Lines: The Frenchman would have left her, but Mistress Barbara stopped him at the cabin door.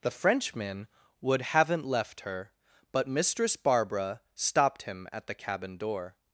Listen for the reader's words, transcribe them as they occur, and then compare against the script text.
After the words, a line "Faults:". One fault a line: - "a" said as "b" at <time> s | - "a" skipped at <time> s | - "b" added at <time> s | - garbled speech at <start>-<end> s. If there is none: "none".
The Frenchman would haven't left her, but Mistress Barbara stopped him at the cabin door.
Faults:
- "have" said as "haven't" at 1.4 s